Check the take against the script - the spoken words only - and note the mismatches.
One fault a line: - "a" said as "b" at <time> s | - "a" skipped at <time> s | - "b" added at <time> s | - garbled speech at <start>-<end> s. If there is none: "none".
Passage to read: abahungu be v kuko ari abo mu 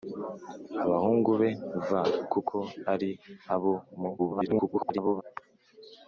- garbled speech at 4.2-5.2 s